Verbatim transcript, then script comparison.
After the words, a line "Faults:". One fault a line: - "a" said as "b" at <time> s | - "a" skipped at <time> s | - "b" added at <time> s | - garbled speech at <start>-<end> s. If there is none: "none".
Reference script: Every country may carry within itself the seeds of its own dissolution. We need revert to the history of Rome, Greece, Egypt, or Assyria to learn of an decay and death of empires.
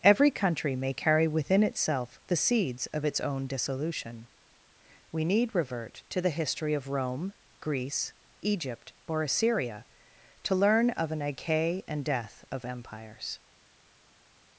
Every country may carry within itself the seeds of its own dissolution. We need revert to the history of Rome, Greece, Egypt, or Assyria to learn of an decay and death of empires.
Faults:
none